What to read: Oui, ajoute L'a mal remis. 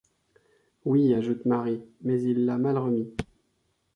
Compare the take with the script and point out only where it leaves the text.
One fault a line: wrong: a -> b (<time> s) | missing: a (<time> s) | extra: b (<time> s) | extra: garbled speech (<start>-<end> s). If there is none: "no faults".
extra: Marie mais il (1.4 s)